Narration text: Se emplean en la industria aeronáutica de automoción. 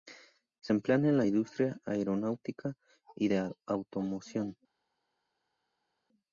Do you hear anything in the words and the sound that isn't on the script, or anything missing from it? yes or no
yes